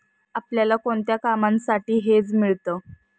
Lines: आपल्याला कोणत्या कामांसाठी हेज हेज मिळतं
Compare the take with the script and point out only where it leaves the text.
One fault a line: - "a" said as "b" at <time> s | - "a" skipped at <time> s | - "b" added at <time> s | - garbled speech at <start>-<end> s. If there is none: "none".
- "हेज" skipped at 2.3 s